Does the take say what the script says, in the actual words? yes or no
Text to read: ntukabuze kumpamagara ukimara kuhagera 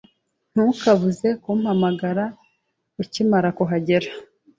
yes